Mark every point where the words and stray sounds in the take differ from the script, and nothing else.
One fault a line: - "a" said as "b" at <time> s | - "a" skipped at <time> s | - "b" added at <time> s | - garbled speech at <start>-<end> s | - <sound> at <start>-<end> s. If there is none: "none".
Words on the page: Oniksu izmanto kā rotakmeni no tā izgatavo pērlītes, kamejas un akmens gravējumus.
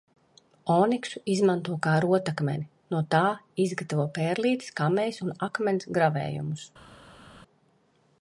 none